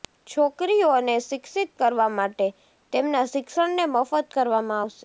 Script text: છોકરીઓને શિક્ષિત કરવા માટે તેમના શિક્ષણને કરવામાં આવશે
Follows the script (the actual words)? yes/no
no